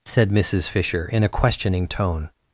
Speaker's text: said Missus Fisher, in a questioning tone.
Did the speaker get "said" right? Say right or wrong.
right